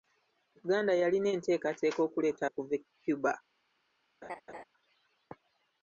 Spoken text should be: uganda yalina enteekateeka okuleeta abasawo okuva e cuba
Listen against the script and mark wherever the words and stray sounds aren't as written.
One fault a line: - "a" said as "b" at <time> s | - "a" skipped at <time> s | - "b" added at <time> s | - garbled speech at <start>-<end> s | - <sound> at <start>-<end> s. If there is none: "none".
- "abasawo" skipped at 2.4 s
- laugh at 4.2-4.6 s